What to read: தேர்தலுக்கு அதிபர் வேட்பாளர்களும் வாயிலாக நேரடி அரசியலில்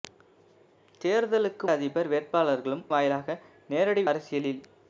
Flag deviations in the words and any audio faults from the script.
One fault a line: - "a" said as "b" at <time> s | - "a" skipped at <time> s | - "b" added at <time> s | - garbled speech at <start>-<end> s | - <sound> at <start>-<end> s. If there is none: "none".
none